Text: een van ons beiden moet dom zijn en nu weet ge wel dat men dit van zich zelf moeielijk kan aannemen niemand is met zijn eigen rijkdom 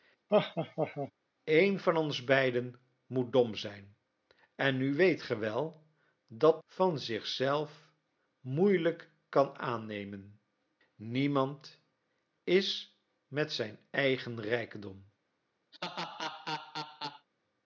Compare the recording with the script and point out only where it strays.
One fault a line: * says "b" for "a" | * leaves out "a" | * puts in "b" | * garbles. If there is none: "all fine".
* leaves out "men dit"